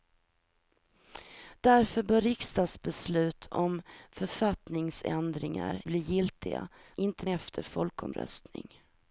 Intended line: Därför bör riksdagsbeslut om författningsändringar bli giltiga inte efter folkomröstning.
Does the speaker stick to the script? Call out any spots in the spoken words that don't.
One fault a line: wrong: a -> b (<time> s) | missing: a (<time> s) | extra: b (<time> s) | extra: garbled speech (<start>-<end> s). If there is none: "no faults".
no faults